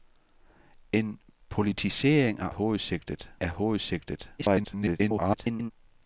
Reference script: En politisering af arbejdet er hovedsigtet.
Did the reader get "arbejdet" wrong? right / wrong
wrong